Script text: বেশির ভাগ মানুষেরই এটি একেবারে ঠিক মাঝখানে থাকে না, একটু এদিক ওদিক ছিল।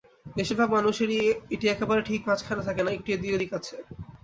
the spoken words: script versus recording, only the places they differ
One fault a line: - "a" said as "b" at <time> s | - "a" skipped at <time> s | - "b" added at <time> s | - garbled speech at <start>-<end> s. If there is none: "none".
- "ছিল" said as "আছে" at 3.6 s